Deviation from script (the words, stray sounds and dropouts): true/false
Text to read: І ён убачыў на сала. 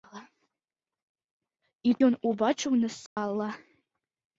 true